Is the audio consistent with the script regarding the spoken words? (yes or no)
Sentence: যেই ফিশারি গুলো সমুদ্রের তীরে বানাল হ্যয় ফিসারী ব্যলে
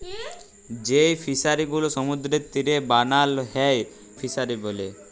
yes